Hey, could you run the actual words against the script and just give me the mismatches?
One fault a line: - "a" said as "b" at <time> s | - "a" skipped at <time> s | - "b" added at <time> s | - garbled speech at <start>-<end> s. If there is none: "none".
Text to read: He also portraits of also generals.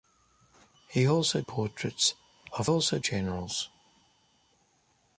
none